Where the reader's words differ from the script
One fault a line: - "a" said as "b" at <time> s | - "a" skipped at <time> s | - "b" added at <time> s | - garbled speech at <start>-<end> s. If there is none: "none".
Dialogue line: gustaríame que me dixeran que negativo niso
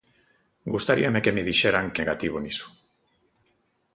none